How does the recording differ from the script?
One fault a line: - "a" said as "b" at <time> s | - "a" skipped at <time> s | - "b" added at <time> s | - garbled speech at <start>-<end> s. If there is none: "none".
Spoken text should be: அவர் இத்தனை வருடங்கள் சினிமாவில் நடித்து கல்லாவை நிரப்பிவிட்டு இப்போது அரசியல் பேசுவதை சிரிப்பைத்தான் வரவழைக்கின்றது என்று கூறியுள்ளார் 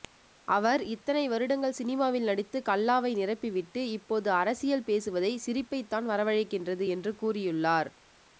none